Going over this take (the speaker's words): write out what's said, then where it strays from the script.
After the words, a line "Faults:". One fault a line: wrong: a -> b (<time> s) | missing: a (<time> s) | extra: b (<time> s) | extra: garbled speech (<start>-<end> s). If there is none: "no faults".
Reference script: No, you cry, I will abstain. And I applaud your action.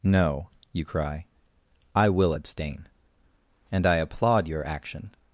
No, you cry, I will abstain. And I applaud your action.
Faults:
no faults